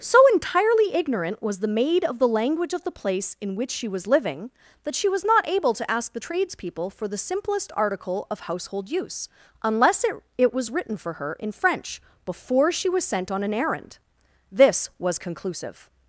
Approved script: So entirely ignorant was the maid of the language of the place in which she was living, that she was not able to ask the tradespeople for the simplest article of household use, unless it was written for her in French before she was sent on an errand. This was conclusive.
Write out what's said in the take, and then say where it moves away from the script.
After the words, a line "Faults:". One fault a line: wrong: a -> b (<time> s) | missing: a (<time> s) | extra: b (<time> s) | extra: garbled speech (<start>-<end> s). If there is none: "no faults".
So entirely ignorant was the maid of the language of the place in which she was living, that she was not able to ask the tradespeople for the simplest article of household use, unless it it was written for her in French before she was sent on an errand. This was conclusive.
Faults:
extra: it (10.4 s)